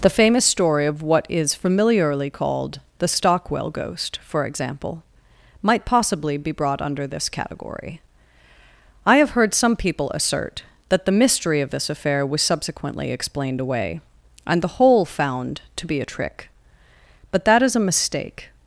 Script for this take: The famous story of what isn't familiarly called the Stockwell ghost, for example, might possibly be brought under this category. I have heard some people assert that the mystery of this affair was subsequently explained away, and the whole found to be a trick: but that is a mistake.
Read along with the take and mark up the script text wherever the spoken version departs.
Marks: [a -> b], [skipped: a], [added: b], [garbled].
The famous story of what [isn't -> is] familiarly called the Stockwell ghost, for example, might possibly be brought under this category. I have heard some people assert that the mystery of this affair was subsequently explained away, and the whole found to be a trick: but that is a mistake.